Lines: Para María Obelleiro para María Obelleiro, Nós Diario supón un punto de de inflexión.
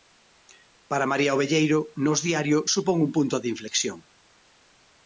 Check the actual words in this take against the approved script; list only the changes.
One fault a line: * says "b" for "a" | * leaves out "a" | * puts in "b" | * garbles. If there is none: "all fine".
* leaves out "para María Obelleiro"
* leaves out "de"